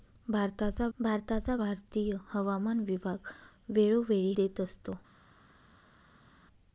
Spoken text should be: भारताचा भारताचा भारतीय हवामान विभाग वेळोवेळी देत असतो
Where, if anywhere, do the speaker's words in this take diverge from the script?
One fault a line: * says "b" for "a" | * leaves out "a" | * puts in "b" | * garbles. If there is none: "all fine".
all fine